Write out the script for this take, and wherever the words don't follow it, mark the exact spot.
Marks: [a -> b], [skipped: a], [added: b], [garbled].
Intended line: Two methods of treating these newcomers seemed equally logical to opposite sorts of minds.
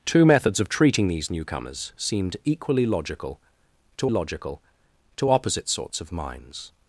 Two methods of treating these newcomers seemed equally logical to [added: logical to] opposite sorts of minds.